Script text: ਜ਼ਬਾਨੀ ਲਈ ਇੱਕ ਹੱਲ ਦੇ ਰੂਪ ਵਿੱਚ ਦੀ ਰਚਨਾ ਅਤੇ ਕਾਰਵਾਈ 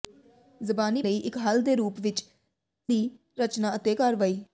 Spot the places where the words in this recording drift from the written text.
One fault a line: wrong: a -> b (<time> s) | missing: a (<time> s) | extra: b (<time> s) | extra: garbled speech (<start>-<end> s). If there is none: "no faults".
no faults